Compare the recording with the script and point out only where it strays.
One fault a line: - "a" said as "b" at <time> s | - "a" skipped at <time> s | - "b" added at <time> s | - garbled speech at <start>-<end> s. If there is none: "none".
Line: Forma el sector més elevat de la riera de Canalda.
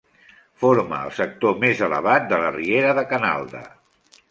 none